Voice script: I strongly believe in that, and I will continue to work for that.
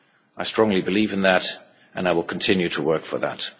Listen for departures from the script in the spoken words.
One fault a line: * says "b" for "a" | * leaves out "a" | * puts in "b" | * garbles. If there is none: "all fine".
all fine